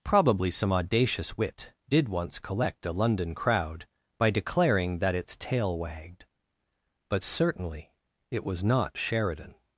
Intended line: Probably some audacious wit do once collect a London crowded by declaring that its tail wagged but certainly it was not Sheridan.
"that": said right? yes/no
yes